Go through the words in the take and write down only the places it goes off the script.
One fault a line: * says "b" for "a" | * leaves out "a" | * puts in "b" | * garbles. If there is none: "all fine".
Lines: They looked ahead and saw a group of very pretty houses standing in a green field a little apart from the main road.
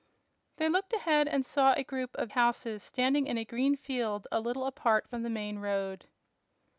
* leaves out "very pretty"